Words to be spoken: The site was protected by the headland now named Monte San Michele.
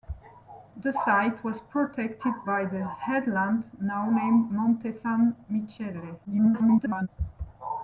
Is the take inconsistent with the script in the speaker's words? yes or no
yes